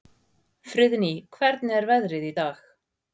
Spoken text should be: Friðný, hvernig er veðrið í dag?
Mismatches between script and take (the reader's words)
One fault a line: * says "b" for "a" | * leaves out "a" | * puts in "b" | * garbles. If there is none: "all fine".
all fine